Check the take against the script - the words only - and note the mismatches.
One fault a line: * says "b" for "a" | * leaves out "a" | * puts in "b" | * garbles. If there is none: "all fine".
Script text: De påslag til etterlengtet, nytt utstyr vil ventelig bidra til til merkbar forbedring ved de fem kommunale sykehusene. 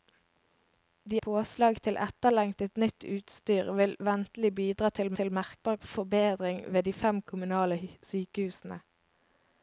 all fine